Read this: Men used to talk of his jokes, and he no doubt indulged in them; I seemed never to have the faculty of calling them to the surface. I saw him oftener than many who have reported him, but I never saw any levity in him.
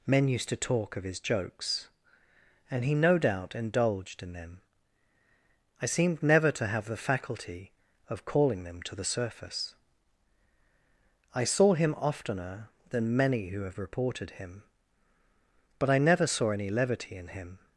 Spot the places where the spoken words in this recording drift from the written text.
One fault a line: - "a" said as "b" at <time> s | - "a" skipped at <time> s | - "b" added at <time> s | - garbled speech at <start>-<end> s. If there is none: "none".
none